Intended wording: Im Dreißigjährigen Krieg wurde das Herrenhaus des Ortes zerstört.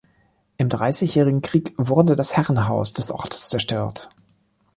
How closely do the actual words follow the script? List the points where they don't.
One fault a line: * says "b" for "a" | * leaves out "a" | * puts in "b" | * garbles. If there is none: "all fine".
all fine